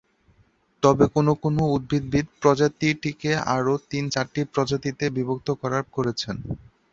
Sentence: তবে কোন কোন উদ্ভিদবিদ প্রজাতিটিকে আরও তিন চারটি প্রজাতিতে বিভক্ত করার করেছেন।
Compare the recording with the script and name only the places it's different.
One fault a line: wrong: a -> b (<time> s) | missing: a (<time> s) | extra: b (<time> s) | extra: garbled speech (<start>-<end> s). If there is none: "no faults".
no faults